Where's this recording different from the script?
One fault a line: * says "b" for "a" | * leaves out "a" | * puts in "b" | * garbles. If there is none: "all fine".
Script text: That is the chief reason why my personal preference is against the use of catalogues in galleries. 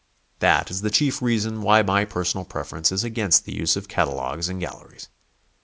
all fine